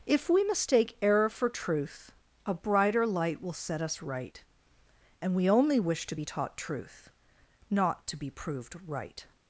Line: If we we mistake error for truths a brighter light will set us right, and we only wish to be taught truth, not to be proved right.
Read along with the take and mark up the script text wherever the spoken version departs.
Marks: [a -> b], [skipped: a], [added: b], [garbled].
If we [skipped: we] mistake error for [truths -> truth] a brighter light will set us right, and we only wish to be taught truth, not to be proved right.